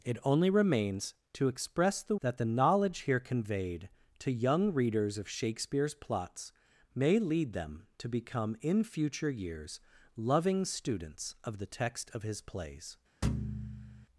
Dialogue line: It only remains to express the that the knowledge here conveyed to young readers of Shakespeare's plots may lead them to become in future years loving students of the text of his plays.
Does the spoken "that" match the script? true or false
true